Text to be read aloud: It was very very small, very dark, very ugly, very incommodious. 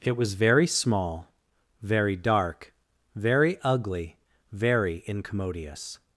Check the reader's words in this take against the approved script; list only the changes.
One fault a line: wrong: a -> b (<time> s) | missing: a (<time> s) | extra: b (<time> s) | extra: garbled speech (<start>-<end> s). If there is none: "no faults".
missing: very (0.7 s)